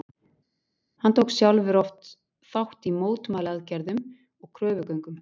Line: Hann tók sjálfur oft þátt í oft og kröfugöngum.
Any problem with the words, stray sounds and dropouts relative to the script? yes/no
yes